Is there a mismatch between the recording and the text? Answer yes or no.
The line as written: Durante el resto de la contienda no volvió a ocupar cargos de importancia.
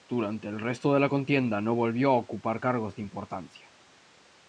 no